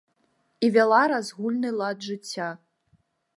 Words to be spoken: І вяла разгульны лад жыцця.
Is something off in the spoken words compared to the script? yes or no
no